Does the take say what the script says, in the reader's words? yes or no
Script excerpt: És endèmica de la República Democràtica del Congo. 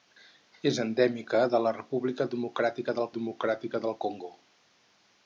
no